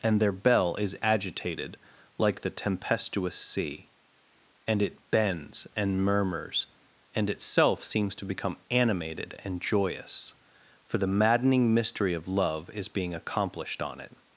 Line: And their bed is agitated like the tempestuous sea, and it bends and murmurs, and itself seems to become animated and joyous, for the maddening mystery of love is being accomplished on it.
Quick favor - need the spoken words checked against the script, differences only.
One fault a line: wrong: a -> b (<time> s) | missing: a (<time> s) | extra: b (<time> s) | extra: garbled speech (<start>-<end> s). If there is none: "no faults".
wrong: bed -> bell (0.3 s)